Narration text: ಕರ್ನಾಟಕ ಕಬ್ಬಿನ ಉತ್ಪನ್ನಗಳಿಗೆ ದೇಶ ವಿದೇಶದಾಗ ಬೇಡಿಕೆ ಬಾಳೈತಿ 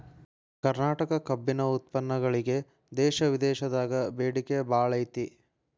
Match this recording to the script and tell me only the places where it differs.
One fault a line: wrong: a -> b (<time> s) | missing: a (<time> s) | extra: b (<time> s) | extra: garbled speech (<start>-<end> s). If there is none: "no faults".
no faults